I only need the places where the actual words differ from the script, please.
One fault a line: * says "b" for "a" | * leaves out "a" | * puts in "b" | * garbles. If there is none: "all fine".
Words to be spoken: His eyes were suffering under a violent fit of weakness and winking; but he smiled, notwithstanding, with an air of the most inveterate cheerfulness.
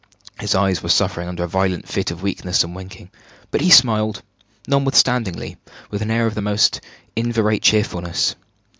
all fine